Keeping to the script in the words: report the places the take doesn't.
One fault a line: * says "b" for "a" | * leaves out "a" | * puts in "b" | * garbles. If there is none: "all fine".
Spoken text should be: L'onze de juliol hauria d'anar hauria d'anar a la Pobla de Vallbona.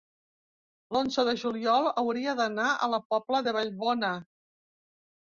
* leaves out "hauria d'anar"